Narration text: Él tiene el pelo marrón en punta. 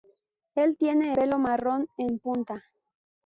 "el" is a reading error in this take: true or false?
true